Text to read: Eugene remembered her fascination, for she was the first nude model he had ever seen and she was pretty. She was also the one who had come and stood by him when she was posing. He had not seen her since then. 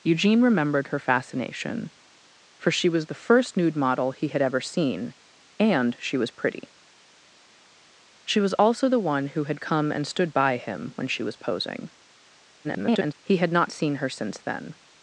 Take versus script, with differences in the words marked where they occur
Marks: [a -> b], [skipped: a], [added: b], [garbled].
Eugene remembered her fascination, for she was the first nude model he had ever seen and she was pretty. She was also the one who had come and stood by him when she was posing. [garbled] He had not seen her since then.